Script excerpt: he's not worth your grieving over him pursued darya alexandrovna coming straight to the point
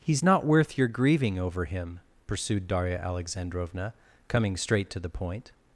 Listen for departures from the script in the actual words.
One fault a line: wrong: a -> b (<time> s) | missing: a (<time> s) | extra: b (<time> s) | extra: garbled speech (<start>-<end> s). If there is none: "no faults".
no faults